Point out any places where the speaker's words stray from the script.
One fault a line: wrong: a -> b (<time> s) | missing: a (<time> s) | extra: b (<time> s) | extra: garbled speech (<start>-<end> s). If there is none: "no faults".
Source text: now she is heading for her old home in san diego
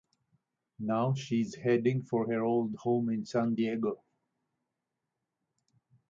no faults